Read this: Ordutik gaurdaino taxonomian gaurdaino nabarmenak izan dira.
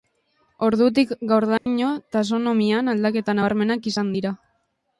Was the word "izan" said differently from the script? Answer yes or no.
no